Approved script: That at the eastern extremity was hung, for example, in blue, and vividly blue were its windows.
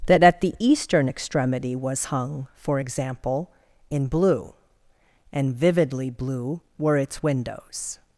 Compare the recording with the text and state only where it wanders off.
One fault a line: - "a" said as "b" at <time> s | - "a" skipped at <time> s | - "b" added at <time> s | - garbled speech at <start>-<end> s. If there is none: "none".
none